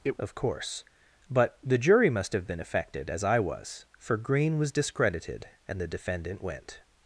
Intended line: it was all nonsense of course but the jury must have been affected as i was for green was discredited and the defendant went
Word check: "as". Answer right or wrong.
right